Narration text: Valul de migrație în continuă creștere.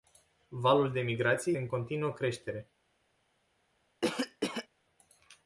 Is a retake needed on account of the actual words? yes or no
no